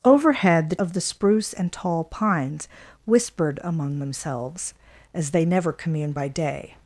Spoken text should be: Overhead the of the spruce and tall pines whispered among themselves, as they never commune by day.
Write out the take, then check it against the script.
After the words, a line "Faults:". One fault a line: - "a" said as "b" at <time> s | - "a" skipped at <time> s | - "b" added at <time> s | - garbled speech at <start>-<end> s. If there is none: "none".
Overhead the of the spruce and tall pines whispered among themselves, as they never commune by day.
Faults:
none